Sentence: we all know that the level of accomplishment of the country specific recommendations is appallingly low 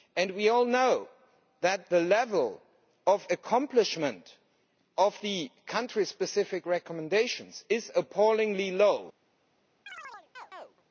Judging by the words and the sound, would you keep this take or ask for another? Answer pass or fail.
fail